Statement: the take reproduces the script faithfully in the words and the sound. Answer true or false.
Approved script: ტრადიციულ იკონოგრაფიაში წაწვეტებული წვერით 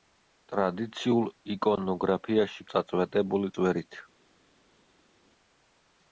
true